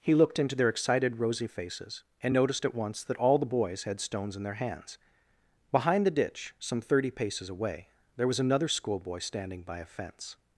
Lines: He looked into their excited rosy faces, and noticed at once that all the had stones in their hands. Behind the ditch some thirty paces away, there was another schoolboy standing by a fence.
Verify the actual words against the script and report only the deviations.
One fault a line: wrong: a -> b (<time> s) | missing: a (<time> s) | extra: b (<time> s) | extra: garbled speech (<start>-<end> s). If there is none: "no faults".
extra: boys (3.4 s)